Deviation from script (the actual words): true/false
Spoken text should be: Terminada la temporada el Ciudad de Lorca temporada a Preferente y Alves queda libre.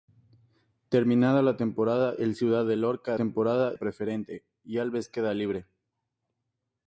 false